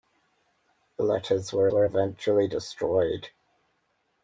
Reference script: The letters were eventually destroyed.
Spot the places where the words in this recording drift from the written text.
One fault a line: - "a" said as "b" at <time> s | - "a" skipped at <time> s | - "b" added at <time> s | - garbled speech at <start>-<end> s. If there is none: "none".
- "were" added at 1.7 s